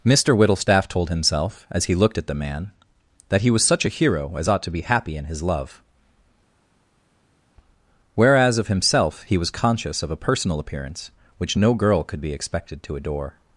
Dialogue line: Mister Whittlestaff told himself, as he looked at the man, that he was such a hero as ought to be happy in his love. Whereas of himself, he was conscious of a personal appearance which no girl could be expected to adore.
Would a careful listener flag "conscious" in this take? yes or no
no